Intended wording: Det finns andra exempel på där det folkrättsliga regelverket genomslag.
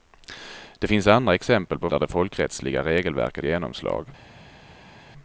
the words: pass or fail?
pass